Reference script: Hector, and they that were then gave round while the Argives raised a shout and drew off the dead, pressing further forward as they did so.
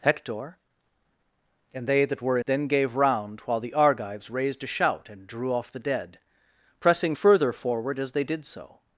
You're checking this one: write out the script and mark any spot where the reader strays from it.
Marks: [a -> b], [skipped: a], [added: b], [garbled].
Hector, and they that were then gave round while the Argives raised a shout and drew off the dead, pressing further forward as they did so.